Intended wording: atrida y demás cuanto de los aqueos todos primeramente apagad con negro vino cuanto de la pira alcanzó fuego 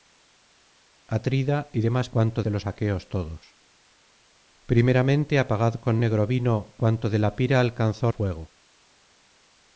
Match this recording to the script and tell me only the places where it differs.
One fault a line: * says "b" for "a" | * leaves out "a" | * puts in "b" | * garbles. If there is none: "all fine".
all fine